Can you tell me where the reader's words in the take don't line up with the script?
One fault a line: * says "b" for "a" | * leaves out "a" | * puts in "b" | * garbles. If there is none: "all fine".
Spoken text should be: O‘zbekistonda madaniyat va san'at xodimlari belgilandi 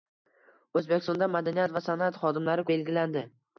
all fine